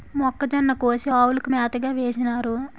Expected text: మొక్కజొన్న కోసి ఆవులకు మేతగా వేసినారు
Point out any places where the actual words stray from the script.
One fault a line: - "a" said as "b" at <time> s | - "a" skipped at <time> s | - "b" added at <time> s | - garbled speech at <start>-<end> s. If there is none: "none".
none